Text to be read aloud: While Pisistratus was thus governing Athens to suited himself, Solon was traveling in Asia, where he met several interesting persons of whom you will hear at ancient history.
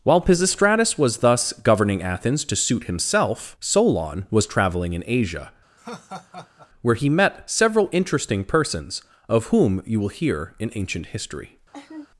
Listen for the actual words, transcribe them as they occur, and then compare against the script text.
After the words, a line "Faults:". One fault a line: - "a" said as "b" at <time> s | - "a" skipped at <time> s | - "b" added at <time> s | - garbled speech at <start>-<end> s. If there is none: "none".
While Pisistratus was thus governing Athens to suit himself, Solon was traveling in Asia, where he met several interesting persons of whom you will hear in ancient history.
Faults:
- "suited" said as "suit" at 2.5 s
- "at" said as "in" at 10.6 s